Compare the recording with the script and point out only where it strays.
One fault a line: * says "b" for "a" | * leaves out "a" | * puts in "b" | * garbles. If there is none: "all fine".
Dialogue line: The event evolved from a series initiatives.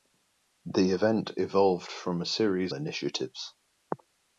all fine